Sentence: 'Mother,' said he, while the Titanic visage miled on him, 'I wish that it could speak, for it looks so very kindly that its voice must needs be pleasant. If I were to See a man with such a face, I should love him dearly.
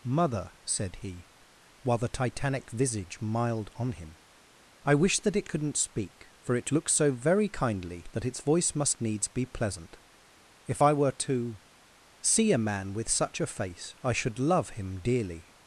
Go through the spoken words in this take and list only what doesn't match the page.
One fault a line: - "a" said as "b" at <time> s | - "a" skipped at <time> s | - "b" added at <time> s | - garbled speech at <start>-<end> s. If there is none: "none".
- "could" said as "couldn't" at 5.5 s